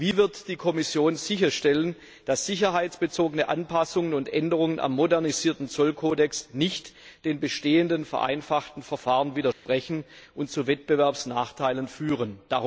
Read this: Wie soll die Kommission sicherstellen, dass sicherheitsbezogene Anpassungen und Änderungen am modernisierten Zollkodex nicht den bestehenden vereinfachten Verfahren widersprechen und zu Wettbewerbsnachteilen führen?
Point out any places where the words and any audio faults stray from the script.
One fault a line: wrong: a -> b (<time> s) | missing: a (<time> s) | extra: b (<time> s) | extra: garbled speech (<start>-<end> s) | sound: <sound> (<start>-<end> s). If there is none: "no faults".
wrong: soll -> wird (0.2 s)
sound: dropout (9.5-9.7 s)